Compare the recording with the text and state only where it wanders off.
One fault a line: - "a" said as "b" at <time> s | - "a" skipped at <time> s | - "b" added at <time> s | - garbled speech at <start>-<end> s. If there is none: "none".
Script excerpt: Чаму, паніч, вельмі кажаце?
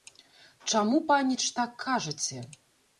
- "вельмі" said as "так" at 1.6 s